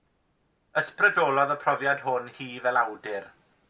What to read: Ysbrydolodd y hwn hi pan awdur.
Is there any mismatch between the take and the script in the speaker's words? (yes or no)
yes